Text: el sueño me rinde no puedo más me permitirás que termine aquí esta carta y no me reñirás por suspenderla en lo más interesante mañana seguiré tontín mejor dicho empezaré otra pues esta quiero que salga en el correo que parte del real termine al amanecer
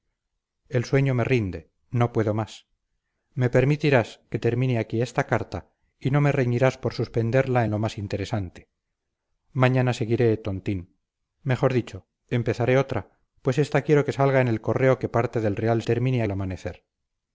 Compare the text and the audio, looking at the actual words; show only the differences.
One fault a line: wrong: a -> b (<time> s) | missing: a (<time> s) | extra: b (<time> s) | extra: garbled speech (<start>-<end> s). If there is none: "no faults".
no faults